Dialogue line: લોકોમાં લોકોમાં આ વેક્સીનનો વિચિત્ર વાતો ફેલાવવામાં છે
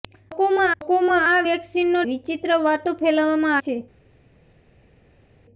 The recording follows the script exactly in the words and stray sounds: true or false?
true